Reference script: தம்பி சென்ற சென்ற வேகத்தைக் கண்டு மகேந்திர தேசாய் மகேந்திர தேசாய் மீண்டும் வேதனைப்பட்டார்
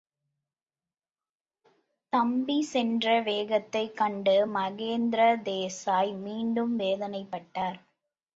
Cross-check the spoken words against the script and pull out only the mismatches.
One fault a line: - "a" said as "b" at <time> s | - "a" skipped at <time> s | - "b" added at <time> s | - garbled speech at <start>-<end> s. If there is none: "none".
- "சென்ற" skipped at 3.2 s
- "மகேந்திர தேசாய்" skipped at 6.1 s